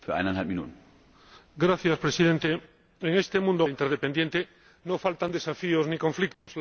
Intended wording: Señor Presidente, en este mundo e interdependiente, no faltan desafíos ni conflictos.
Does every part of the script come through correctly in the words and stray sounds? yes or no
no